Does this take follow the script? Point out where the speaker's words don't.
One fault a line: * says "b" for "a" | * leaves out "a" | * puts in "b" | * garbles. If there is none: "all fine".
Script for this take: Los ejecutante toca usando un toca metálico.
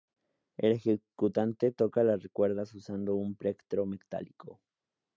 * says "El" for "Los"
* puts in "las cuerdas"
* says "plectro" for "toca"